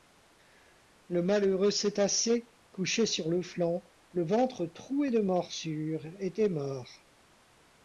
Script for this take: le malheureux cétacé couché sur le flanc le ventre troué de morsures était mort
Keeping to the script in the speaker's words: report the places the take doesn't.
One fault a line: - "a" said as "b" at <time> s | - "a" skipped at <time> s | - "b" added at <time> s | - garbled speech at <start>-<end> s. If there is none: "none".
none